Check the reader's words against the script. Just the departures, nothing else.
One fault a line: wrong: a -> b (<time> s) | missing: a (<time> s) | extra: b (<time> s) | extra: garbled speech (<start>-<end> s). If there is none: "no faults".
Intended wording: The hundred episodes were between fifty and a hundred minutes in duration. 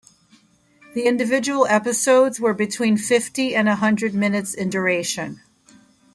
wrong: hundred -> individual (1.1 s)